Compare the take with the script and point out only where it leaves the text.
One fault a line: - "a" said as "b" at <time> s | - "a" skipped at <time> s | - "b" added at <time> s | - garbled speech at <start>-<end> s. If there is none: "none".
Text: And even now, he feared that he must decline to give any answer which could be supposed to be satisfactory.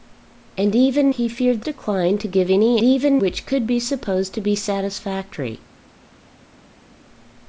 - "now" skipped at 1.1 s
- "that he must" skipped at 1.6 s
- "answer" said as "even" at 2.8 s